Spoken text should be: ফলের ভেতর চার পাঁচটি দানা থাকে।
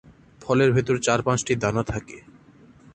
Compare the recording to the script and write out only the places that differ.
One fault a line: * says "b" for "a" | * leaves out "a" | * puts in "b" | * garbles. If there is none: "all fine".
all fine